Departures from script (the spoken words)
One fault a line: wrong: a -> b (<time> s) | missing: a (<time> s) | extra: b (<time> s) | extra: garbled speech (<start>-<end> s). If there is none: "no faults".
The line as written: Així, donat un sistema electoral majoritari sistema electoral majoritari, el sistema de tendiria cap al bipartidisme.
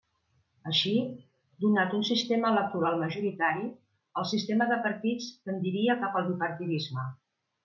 missing: sistema electoral majoritari (3.7 s)
extra: partits (4.9 s)